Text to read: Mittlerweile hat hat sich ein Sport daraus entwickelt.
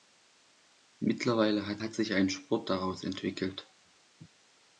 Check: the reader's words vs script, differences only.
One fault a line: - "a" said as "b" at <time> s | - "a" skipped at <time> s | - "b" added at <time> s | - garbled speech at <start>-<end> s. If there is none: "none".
none